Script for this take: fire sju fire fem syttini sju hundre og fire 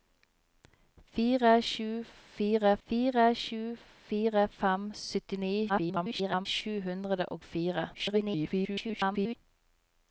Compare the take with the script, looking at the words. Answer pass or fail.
fail